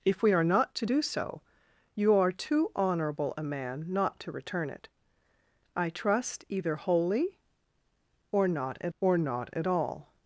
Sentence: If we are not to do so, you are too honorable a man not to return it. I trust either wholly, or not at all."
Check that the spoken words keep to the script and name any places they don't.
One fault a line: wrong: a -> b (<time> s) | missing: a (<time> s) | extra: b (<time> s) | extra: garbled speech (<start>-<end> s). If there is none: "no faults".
extra: or not at (9.0 s)